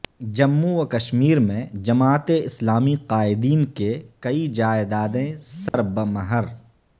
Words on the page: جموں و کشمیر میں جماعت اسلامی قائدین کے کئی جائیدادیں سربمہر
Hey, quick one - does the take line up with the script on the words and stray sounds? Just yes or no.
no